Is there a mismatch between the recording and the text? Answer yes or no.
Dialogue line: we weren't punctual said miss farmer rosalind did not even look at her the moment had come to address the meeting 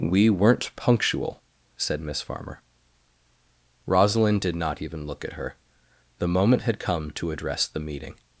no